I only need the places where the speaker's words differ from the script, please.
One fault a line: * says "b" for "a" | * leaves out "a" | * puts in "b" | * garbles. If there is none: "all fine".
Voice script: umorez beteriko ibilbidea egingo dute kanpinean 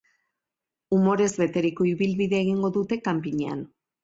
all fine